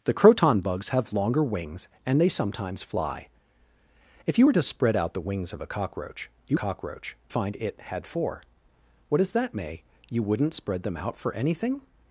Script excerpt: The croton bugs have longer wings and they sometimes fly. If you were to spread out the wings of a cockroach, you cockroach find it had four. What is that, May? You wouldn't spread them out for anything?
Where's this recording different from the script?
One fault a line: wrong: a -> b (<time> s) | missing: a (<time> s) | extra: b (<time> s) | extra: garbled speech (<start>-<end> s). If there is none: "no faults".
no faults